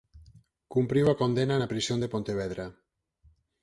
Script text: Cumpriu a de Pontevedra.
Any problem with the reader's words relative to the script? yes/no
yes